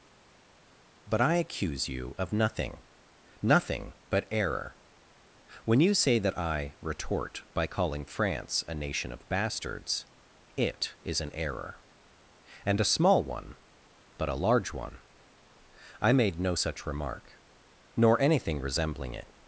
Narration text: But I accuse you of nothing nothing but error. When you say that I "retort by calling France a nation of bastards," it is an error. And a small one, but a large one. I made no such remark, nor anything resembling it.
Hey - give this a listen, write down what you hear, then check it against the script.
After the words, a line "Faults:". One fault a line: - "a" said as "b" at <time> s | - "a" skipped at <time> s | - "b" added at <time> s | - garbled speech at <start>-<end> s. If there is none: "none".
But I accuse you of nothing nothing but error. When you say that I "retort by calling France a nation of bastards," it is an error. And a small one, but a large one. I made no such remark, nor anything resembling it.
Faults:
none